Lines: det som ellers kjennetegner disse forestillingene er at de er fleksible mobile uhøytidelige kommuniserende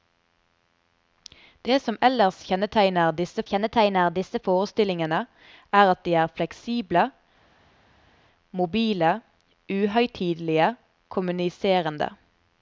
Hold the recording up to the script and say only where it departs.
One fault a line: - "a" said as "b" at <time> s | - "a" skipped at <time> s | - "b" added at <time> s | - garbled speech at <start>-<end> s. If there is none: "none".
- "kjennetegner disse" added at 3.5 s